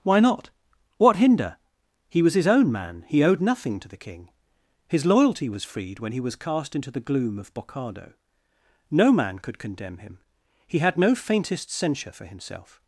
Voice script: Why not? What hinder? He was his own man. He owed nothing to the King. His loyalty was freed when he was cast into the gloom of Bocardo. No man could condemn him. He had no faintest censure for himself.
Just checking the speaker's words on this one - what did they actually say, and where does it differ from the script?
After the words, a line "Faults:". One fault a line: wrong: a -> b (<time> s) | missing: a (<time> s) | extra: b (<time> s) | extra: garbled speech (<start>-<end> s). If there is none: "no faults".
Why not? What hinder? He was his own man. He owed nothing to the King. His loyalty was freed when he was cast into the gloom of Bocardo. No man could condemn him. He had no faintest censure for himself.
Faults:
no faults